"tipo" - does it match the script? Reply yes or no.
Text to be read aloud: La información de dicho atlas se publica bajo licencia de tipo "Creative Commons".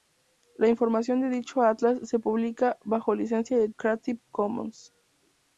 no